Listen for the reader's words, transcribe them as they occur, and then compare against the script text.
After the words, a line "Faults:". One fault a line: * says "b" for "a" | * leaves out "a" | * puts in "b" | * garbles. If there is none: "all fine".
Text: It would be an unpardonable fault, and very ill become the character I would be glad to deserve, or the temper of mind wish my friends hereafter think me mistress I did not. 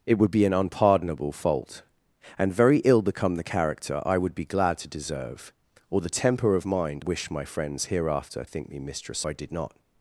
It would be an unpardonable fault, and very ill become the character I would be glad to deserve, or the temper of mind wish my friends hereafter think me mistress I did not.
Faults:
all fine